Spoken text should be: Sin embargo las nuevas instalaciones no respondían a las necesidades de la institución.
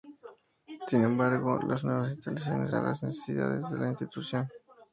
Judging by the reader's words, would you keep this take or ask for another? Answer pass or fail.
fail